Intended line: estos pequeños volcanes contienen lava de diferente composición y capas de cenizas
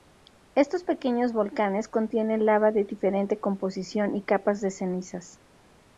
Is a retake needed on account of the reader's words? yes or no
no